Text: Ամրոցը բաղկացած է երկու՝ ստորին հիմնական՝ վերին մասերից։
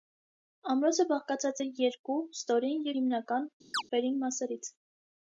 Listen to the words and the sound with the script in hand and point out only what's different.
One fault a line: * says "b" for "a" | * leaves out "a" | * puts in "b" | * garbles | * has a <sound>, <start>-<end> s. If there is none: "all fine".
* has a chirp, 3.7-3.8 s